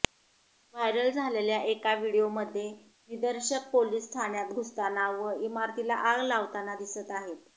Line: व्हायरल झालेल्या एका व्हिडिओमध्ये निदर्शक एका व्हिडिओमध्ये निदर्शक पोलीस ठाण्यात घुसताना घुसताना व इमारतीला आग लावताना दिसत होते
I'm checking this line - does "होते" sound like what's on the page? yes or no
no